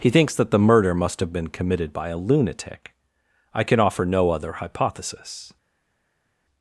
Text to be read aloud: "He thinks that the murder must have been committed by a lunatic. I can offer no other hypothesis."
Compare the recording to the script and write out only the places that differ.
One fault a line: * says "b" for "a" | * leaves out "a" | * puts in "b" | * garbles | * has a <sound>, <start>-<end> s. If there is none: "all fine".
all fine